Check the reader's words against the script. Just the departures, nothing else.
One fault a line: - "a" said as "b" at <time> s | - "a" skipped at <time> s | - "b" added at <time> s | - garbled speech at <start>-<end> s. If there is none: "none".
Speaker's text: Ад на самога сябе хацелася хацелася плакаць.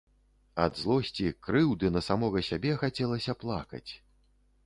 - "злосці крыўды" added at 0.8 s
- "хацелася" skipped at 3.3 s